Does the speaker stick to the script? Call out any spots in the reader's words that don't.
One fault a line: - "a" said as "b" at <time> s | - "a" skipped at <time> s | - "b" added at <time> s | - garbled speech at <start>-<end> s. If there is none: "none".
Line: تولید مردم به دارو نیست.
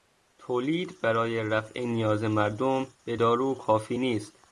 - "برای رفع نیاز" added at 1.0 s
- "کافی" added at 3.5 s